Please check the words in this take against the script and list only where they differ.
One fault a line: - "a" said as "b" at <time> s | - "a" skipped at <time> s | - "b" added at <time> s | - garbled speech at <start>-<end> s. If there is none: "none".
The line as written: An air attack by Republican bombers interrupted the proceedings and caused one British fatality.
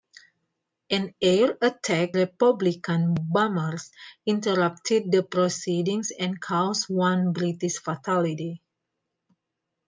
- "by" skipped at 2.1 s